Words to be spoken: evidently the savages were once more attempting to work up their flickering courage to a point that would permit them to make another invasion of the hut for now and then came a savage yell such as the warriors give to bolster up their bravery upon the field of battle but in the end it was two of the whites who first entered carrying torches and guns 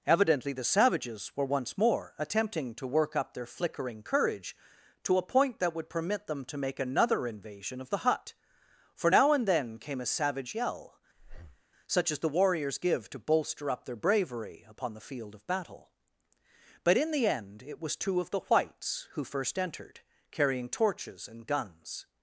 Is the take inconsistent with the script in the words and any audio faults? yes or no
yes